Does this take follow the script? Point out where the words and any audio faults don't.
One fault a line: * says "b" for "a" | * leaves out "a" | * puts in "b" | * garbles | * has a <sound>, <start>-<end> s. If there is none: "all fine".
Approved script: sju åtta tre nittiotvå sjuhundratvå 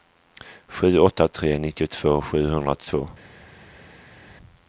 all fine